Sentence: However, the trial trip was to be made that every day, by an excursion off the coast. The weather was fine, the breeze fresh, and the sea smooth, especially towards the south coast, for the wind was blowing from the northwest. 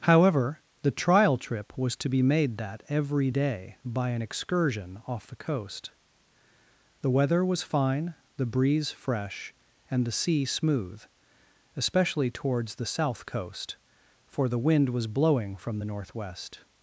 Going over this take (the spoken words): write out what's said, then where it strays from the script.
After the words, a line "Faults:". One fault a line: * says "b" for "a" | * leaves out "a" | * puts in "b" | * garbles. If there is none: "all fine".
However, the trial trip was to be made that every day, by an excursion off the coast. The weather was fine, the breeze fresh, and the sea smooth, especially towards the south coast, for the wind was blowing from the northwest.
Faults:
all fine